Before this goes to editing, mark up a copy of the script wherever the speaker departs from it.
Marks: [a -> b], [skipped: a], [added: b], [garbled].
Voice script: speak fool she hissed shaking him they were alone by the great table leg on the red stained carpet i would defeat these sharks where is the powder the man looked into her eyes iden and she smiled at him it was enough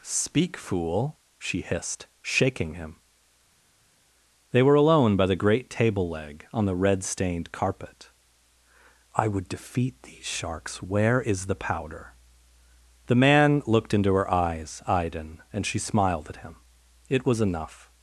speak fool she hissed shaking him they were alone by the great table leg on the red stained carpet i would defeat these sharks where is the powder the man looked into her eyes iden and she smiled at him it was enough